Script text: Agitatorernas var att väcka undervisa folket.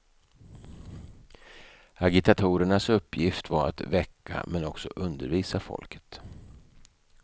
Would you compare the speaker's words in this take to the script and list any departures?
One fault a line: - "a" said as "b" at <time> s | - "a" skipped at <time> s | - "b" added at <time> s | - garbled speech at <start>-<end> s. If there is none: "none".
- "uppgift" added at 2.9 s
- "men också" added at 4.5 s